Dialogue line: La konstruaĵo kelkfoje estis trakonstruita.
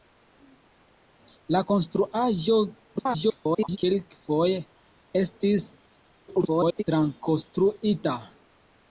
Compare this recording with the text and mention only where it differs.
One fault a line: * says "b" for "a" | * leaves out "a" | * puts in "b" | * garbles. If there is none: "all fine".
* garbles
* garbles